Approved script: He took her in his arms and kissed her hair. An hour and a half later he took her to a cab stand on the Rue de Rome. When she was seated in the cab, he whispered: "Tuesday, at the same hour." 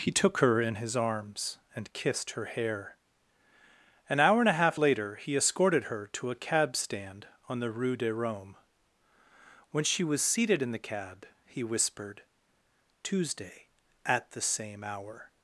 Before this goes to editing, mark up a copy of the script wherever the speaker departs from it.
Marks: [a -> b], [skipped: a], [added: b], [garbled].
He took her in his arms and kissed her hair. An hour and a half later he [took -> escorted] her to a cab stand on the Rue de Rome. When she was seated in the cab, he whispered: "Tuesday, at the same hour."